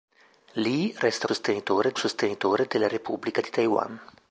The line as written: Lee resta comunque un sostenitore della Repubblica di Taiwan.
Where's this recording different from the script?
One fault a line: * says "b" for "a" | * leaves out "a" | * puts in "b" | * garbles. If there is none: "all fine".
* says "sostenitore" for "comunque"